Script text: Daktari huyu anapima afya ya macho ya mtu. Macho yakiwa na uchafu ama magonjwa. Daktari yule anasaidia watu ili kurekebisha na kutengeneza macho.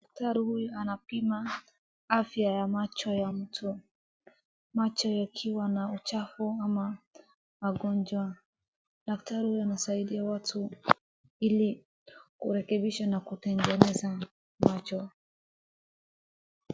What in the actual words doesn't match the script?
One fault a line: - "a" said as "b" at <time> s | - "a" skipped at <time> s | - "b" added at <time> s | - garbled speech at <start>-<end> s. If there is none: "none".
- "yule" said as "huyu" at 9.5 s